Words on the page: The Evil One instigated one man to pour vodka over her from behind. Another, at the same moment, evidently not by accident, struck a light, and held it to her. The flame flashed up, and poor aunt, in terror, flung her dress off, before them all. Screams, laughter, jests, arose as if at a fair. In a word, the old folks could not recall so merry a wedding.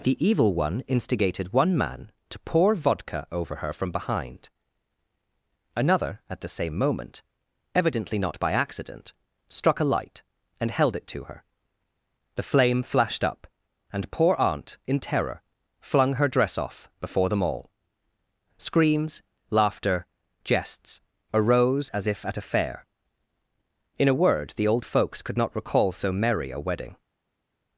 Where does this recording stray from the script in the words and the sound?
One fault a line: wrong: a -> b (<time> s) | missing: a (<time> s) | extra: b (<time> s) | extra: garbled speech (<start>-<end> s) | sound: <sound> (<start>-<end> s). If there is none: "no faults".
no faults